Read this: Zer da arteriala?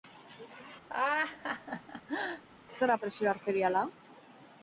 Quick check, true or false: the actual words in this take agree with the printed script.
false